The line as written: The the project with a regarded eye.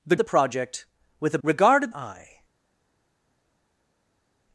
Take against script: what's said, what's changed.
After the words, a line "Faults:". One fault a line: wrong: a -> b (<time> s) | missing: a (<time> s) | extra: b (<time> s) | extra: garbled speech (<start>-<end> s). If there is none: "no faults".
The the project with a regarded eye.
Faults:
no faults